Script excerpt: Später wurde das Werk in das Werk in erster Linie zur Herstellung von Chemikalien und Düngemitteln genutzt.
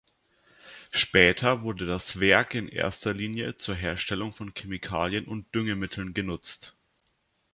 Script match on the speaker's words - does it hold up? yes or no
no